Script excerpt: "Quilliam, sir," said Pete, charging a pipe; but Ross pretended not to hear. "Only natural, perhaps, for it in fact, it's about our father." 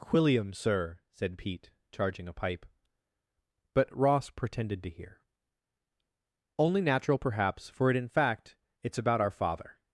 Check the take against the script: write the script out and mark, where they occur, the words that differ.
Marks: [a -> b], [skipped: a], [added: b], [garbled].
"Quilliam, sir," said Pete, charging a pipe; but Ross pretended [skipped: not] to hear. "Only natural, perhaps, for it in fact, it's about our father."